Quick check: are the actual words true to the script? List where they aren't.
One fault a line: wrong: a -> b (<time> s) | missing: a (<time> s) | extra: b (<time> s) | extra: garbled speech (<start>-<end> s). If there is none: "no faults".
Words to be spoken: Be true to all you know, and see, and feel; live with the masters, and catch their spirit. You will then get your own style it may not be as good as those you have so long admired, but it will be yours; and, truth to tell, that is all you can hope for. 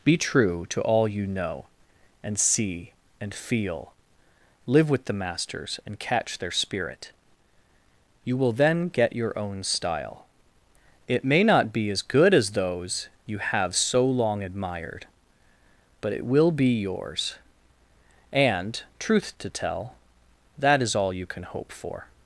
no faults